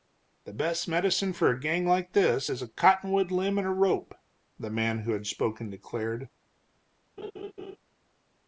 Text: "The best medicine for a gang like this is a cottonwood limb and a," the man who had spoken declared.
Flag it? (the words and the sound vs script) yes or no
yes